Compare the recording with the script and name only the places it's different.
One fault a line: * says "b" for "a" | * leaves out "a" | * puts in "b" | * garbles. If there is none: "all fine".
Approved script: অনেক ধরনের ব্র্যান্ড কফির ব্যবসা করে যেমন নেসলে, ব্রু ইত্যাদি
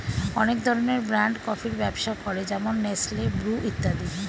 all fine